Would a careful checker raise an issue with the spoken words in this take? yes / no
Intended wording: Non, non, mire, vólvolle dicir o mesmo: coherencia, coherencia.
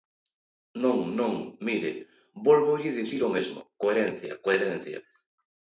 no